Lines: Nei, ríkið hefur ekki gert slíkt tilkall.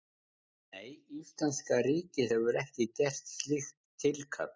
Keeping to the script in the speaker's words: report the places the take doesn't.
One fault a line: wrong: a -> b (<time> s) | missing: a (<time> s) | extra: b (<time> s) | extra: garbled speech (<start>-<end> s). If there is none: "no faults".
extra: íslenska (1.2 s)